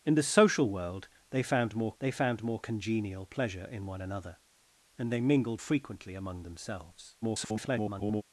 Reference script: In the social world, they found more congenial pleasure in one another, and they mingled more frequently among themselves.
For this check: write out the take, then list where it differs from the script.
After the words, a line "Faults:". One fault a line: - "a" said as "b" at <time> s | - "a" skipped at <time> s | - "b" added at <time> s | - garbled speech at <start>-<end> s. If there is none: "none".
In the social world, they found more they found more congenial pleasure in one another, and they mingled frequently among themselves. [garbled]
Faults:
- "they found more" added at 2.0 s
- "more" skipped at 5.6 s
- garbled speech at 7.2-8.2 s